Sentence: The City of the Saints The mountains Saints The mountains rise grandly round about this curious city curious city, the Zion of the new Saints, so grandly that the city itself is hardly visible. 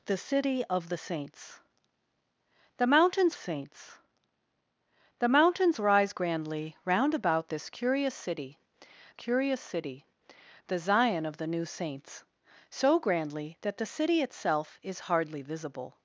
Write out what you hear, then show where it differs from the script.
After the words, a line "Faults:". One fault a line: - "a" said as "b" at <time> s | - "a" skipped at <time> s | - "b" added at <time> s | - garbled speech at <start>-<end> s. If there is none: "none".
The City of the Saints The mountains Saints The mountains rise grandly round about this curious city curious city, the Zion of the new Saints, so grandly that the city itself is hardly visible.
Faults:
none